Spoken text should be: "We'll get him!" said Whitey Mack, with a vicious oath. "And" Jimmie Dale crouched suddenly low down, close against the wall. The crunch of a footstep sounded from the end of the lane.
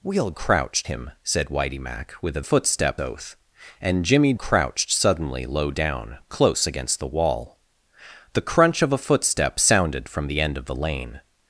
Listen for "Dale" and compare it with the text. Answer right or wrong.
wrong